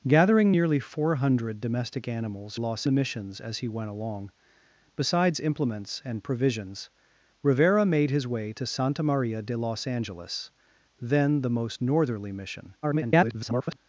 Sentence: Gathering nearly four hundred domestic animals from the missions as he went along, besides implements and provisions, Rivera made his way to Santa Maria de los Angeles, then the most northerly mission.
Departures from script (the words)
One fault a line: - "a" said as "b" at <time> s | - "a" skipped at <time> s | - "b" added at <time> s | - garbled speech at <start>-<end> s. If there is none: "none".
- "from" said as "los" at 2.6 s
- garbled speech at 12.8-13.8 s